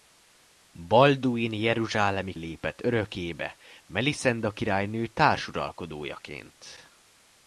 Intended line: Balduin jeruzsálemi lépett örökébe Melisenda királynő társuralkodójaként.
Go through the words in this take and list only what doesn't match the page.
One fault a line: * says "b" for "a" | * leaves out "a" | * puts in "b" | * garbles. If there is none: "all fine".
all fine